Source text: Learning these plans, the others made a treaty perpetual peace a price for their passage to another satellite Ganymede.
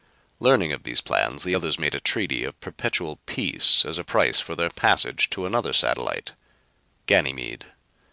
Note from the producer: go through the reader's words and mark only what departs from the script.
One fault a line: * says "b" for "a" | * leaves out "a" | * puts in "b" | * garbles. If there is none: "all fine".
* puts in "of"
* puts in "of"
* puts in "as"